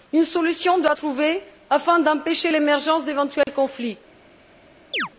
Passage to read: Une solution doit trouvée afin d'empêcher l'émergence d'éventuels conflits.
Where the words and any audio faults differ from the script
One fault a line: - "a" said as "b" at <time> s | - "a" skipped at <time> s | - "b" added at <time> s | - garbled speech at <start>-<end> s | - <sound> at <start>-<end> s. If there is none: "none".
- dropout at 3.4-3.5 s
- chirp at 4.9-5.1 s